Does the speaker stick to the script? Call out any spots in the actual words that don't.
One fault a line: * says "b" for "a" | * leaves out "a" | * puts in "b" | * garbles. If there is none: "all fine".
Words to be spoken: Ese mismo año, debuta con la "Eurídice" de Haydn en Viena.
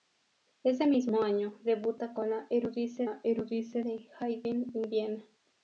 * puts in "la Eurídice"